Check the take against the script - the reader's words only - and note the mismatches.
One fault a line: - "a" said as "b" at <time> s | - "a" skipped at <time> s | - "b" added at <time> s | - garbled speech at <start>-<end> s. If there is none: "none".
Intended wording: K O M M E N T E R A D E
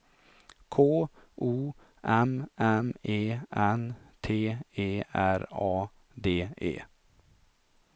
none